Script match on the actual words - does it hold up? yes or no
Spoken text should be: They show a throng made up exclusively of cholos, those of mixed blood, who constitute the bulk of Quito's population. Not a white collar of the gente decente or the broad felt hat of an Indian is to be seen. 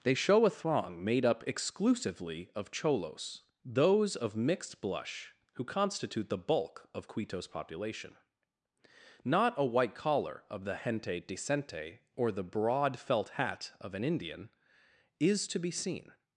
no